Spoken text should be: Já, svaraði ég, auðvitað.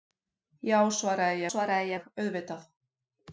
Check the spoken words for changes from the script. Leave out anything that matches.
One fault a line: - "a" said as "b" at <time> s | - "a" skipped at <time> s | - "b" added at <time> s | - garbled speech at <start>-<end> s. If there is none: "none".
- "svaraði" added at 1.5 s